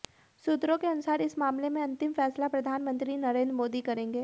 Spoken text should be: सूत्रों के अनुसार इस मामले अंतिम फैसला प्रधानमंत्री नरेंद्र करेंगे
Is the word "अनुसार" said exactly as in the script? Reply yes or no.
yes